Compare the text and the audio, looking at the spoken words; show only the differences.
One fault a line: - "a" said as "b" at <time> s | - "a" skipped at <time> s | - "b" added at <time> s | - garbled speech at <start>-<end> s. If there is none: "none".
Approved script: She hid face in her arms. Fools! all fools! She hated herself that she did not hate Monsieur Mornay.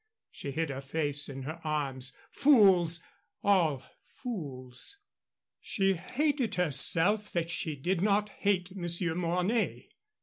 - "her" added at 0.7 s